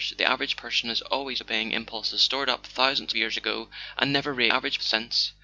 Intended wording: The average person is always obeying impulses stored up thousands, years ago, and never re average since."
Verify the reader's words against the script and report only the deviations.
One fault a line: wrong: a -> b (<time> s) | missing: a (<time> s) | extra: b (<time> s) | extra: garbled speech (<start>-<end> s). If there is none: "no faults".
no faults